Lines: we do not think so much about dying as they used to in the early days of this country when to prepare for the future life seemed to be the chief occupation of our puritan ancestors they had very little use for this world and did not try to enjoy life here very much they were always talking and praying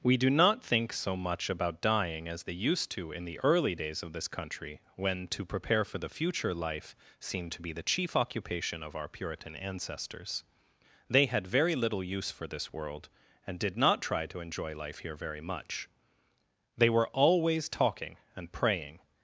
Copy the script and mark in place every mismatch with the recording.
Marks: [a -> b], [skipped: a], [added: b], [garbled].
we do not think so much about dying as they used to in the early days of this country when to prepare for the future life seemed to be the chief occupation of our puritan ancestors they had very little use for this world and did not try to enjoy life here very much they were always talking and praying